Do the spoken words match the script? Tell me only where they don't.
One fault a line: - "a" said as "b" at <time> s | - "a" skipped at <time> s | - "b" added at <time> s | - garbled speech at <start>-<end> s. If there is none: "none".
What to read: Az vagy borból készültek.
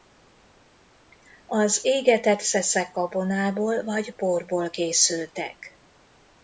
- "égetett szeszek gabonából" added at 1.8 s